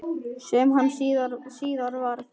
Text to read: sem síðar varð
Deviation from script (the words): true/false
true